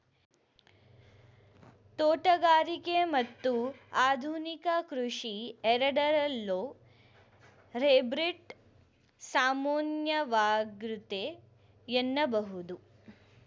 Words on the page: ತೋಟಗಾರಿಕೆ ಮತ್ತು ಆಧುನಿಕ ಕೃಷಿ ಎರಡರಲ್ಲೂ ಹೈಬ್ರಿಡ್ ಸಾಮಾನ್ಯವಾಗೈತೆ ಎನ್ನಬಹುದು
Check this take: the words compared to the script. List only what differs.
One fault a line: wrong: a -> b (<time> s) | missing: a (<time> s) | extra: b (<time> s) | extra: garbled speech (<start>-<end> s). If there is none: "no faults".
no faults